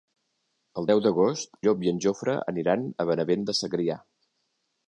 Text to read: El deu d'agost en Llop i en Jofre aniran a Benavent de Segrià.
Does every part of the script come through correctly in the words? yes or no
no